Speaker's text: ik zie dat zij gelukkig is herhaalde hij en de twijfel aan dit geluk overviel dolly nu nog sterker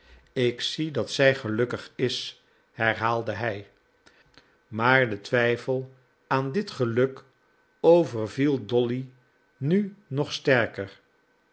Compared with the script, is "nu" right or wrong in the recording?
right